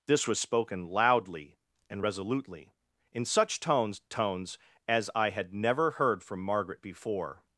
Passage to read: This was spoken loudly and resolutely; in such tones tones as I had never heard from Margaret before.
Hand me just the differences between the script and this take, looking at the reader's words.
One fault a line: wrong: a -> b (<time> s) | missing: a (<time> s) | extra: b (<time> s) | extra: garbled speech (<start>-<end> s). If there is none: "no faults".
no faults